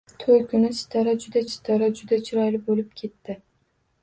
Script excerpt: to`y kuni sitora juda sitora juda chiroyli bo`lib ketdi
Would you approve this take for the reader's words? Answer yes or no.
yes